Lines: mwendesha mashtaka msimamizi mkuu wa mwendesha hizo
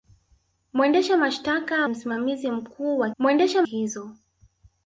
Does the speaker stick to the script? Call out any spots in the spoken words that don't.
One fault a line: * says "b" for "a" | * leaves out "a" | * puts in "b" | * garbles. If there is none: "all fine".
all fine